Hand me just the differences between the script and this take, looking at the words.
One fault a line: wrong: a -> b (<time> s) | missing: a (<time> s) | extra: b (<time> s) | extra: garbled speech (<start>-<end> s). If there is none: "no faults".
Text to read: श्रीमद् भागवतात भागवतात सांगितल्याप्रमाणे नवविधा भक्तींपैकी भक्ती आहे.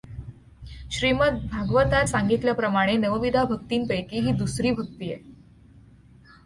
missing: भागवतात (2.1 s)
extra: ही दुसरी (4.2 s)